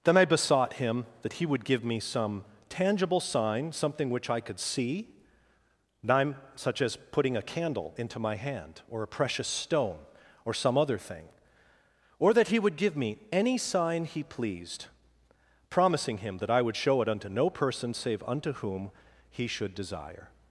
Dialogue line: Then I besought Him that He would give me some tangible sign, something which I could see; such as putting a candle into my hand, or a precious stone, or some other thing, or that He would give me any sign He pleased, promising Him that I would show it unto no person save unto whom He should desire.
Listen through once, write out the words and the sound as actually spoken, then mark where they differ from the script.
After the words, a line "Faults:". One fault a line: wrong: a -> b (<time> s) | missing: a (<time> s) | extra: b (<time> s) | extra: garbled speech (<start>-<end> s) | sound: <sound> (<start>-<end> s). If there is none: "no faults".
Then I besought Him that He would give me some tangible sign, something which I could see; such as putting a candle into my hand, or a precious stone, or some other thing, or that He would give me any sign He pleased, promising Him that I would show it unto no person save unto whom He should desire.
Faults:
no faults